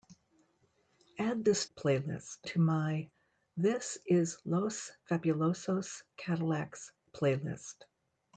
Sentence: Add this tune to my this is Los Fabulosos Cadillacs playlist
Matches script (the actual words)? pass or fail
fail